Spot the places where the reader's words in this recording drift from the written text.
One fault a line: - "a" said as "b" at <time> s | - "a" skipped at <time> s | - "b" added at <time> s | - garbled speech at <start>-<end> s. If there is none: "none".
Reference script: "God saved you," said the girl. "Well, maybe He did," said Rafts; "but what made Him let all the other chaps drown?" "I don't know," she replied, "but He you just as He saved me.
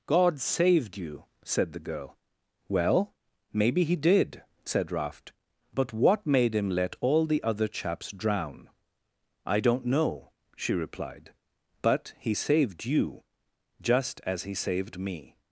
- "Rafts" said as "Raft" at 4.9 s
- "saved" added at 12.3 s